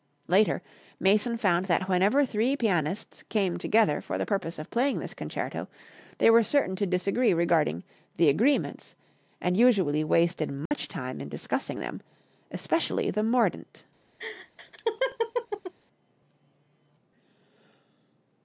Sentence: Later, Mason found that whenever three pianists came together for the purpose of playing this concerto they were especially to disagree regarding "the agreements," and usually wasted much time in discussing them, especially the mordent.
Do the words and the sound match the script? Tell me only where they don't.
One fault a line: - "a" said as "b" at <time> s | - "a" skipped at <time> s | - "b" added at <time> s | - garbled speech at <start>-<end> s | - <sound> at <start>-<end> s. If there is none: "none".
- "especially" said as "certain" at 6.4 s
- dropout at 10.7-10.7 s
- laugh at 14.2-15.7 s